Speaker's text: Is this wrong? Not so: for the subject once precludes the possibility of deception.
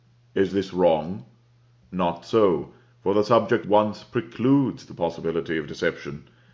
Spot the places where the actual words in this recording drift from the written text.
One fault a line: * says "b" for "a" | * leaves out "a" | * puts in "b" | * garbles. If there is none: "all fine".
all fine